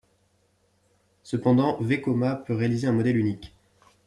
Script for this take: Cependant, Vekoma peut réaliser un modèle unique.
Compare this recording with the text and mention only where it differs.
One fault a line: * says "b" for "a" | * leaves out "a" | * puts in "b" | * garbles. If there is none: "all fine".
all fine